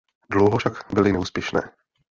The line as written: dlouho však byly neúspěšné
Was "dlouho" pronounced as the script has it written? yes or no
yes